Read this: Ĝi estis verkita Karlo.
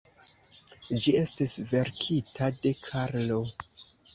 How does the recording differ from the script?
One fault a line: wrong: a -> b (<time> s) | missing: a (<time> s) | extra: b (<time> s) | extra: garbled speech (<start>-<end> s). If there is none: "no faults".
extra: de (2.6 s)